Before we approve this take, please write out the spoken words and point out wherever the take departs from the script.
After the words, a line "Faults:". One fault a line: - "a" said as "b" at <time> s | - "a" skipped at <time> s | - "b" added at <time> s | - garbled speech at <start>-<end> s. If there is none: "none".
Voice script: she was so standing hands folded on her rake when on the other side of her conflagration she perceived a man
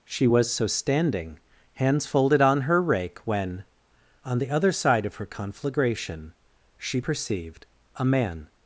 she was so standing hands folded on her rake when on the other side of her conflagration she perceived a man
Faults:
none